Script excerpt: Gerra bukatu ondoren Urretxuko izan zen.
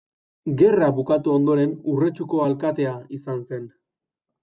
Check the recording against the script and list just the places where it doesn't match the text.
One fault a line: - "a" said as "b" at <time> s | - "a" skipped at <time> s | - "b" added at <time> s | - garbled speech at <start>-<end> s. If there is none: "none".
- "alkatea" added at 2.5 s